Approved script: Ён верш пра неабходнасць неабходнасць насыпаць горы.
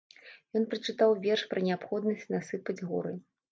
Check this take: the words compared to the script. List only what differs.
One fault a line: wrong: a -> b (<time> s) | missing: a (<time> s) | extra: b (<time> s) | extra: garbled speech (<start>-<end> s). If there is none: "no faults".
extra: прачытаў (0.7 s)
missing: неабходнасць (2.3 s)